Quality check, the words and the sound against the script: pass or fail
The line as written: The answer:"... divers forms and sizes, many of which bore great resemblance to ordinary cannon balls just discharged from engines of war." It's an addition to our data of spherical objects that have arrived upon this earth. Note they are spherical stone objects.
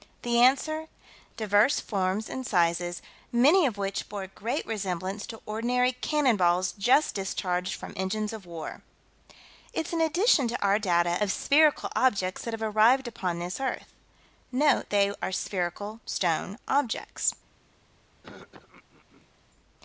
fail